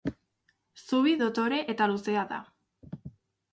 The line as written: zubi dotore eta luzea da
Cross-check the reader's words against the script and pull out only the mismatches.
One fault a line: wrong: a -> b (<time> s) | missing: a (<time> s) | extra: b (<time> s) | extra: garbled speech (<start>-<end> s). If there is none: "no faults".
no faults